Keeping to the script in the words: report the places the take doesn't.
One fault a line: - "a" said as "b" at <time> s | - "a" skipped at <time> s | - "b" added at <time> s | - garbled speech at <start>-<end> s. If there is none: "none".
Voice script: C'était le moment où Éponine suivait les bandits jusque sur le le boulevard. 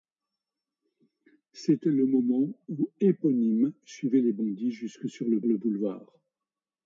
none